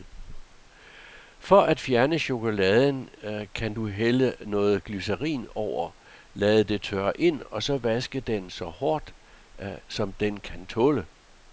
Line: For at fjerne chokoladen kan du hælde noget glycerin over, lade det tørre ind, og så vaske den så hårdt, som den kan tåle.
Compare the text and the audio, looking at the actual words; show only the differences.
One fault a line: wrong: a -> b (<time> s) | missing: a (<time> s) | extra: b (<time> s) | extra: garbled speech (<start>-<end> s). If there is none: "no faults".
no faults